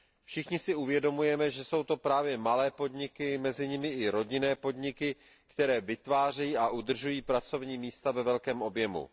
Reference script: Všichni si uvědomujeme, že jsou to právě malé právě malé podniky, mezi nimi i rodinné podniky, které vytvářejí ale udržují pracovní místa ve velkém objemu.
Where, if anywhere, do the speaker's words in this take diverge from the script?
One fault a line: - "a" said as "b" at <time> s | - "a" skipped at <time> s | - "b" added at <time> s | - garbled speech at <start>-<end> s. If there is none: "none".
- "právě malé" skipped at 2.7 s
- "ale" said as "a" at 6.6 s